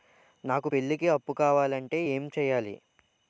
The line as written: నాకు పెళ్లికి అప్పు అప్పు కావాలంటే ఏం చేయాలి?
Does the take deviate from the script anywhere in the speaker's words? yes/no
yes